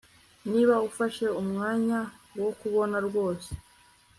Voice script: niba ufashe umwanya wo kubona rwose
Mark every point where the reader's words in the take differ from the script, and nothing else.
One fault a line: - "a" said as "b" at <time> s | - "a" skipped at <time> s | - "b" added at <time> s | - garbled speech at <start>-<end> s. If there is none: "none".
none